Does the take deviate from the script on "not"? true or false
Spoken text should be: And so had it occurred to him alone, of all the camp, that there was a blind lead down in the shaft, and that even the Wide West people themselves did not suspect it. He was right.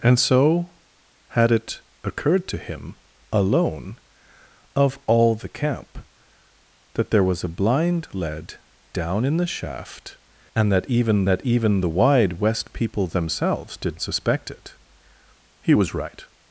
true